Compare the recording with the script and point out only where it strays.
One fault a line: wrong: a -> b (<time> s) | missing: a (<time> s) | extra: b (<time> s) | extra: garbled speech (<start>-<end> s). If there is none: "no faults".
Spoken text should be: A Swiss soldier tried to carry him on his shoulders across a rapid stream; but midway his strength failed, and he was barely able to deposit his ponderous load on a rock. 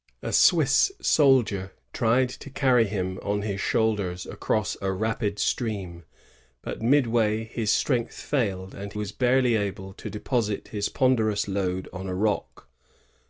missing: he (8.9 s)